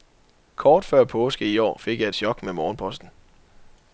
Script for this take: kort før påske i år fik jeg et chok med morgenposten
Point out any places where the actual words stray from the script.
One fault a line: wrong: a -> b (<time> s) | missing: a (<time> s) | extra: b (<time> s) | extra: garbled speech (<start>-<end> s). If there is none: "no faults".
no faults